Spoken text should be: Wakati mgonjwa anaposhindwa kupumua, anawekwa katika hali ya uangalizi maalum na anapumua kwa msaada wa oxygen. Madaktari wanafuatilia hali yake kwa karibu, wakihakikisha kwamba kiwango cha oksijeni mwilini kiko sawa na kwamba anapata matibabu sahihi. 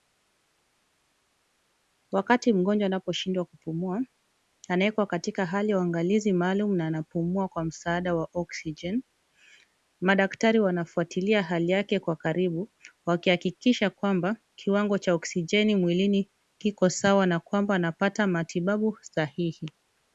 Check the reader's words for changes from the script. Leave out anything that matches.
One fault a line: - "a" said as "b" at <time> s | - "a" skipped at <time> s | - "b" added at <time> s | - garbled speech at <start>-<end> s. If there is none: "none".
none